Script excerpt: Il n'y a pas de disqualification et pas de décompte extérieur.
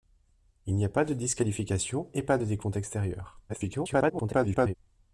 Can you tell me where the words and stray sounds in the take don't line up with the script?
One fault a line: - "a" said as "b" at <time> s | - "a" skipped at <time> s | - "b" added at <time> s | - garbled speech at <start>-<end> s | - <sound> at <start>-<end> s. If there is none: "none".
- garbled speech at 3.5-4.7 s